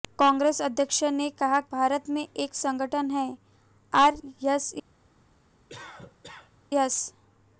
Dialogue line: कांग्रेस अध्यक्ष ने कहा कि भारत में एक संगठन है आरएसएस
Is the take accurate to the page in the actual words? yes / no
no